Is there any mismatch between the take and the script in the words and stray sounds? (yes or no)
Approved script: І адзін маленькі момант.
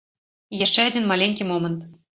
yes